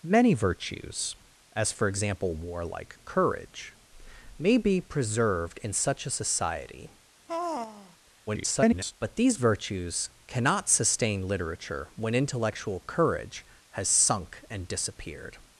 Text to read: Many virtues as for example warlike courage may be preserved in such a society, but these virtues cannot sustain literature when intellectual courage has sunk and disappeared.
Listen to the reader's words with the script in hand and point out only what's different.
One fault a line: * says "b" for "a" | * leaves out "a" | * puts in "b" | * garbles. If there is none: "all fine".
* garbles